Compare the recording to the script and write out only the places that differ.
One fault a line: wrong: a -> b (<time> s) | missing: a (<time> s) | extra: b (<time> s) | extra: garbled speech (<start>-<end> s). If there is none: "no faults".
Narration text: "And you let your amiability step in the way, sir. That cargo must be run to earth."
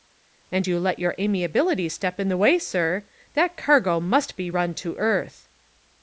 no faults